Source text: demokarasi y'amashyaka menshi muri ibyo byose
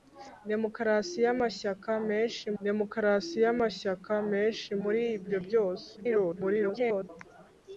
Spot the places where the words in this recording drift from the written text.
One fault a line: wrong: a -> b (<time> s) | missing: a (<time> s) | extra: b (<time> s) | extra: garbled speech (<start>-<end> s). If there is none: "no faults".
extra: demokarasi y'amashyaka menshi (2.6 s)
extra: garbled speech (6.0-7.1 s)